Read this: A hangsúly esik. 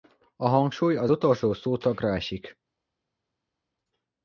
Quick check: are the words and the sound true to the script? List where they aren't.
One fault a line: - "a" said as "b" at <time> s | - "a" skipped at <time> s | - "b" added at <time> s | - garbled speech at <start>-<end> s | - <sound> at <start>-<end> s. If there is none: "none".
- "az utolsó szótagra" added at 0.9 s